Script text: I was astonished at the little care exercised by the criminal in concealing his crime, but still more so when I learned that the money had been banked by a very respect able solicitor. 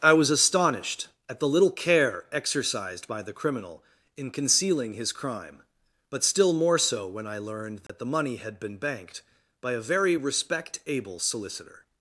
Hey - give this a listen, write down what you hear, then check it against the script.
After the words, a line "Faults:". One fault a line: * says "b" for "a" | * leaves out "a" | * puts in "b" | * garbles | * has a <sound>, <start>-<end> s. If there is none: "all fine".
I was astonished at the little care exercised by the criminal in concealing his crime, but still more so when I learned that the money had been banked by a very respect able solicitor.
Faults:
* has a dropout, 7.9-7.9 s